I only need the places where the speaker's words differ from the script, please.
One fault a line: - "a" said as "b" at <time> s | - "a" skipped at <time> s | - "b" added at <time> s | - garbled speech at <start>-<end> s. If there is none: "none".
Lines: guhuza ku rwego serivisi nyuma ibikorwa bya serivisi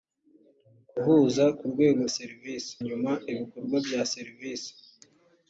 none